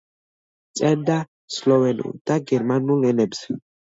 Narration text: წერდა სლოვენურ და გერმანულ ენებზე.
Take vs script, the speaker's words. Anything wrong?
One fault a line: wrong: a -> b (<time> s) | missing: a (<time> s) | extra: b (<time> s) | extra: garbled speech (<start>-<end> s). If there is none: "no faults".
no faults